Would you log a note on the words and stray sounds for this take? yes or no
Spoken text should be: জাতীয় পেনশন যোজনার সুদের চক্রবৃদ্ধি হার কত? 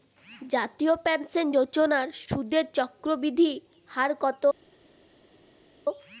no